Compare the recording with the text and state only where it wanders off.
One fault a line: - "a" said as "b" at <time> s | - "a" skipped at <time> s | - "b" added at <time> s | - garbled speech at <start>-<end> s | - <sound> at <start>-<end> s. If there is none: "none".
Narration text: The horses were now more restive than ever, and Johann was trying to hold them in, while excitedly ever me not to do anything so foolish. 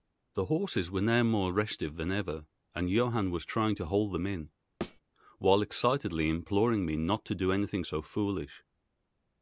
- thud at 4.8-5.0 s
- "ever" said as "imploring" at 6.3 s